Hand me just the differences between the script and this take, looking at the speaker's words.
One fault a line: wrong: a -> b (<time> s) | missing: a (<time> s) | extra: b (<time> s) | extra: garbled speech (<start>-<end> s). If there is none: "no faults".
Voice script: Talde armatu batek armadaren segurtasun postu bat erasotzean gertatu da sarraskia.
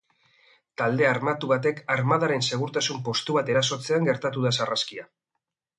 no faults